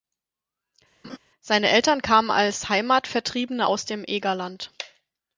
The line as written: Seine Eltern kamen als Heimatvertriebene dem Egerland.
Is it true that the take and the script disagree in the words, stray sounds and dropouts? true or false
true